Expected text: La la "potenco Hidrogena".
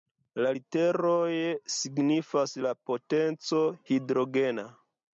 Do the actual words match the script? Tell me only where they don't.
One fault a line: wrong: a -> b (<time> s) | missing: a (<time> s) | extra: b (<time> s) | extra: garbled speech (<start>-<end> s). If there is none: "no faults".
extra: literoj signifas (0.6 s)